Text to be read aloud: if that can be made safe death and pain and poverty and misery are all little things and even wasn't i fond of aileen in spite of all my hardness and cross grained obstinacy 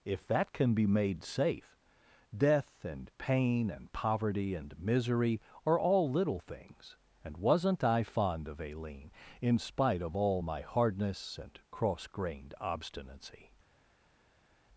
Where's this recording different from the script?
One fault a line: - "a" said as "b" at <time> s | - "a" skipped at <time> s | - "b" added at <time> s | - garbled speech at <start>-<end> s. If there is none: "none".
- "even" skipped at 7.4 s